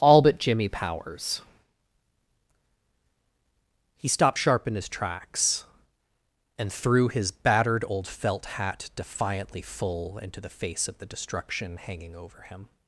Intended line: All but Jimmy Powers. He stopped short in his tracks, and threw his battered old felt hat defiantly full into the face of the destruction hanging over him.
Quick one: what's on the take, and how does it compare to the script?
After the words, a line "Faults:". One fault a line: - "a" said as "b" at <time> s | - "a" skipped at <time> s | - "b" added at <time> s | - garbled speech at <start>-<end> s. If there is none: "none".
All but Jimmy Powers. He stopped sharp in his tracks, and threw his battered old felt hat defiantly full into the face of the destruction hanging over him.
Faults:
- "short" said as "sharp" at 4.4 s